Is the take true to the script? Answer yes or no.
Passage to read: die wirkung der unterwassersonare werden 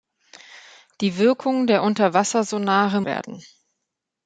yes